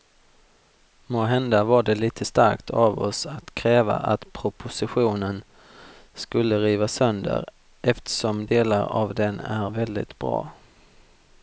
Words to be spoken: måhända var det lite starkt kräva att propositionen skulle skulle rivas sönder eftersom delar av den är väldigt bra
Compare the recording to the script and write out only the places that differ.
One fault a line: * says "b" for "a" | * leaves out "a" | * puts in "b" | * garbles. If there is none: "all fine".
* puts in "av oss att"
* leaves out "skulle"